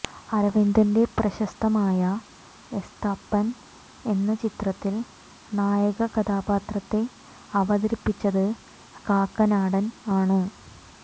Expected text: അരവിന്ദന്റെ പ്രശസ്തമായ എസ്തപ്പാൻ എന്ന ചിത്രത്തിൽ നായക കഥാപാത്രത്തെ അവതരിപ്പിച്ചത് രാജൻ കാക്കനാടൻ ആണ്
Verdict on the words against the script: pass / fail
fail